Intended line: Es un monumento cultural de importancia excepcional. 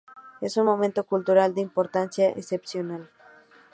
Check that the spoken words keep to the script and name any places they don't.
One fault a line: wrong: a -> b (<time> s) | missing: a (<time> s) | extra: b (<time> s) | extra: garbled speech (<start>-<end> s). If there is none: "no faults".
no faults